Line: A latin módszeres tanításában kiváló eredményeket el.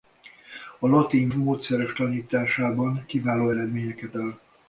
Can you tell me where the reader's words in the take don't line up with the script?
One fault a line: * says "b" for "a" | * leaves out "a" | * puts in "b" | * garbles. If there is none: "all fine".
all fine